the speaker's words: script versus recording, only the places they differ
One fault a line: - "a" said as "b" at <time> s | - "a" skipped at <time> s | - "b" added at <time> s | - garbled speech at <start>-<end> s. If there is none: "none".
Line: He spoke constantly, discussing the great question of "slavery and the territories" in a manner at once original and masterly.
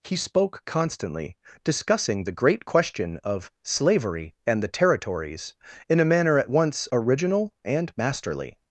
none